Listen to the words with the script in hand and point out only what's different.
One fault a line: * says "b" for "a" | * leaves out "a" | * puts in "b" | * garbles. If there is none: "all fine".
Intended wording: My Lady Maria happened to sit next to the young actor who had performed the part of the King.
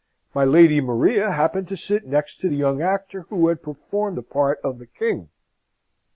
all fine